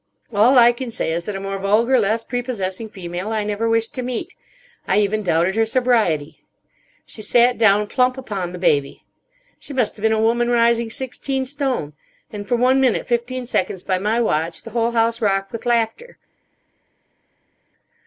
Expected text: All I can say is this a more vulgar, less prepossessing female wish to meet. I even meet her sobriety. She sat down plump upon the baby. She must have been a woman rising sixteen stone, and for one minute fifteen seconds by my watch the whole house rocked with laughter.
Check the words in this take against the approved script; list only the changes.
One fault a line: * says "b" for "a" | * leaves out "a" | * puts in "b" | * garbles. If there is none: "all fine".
* says "that" for "this"
* puts in "I never"
* says "doubted" for "meet"